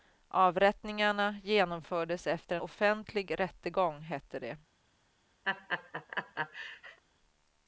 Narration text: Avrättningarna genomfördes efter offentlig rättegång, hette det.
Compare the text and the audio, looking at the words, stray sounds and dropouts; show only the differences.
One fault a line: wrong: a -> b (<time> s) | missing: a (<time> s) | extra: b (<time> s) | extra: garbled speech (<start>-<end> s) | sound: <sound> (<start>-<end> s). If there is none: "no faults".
sound: laugh (5.4-7.0 s)